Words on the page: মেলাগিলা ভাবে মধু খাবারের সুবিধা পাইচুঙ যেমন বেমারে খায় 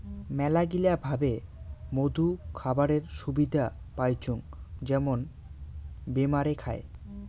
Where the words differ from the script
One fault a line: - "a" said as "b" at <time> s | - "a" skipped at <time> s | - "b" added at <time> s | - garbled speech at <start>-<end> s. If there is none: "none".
none